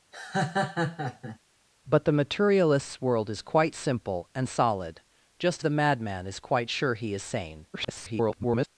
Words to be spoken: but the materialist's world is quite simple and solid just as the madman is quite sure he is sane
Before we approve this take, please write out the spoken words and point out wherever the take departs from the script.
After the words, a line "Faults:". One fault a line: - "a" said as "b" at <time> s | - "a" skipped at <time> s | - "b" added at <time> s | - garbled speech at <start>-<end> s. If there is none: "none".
but the materialist's world is quite simple and solid just the madman is quite sure he is sane [garbled]
Faults:
- "as" skipped at 5.6 s
- garbled speech at 7.7-8.7 s